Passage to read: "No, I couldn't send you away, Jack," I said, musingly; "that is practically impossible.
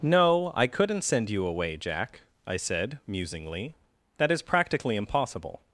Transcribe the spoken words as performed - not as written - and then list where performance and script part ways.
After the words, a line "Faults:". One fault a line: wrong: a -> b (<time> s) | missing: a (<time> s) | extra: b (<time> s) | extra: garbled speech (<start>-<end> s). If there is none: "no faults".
"No, I couldn't send you away, Jack," I said, musingly; "that is practically impossible.
Faults:
no faults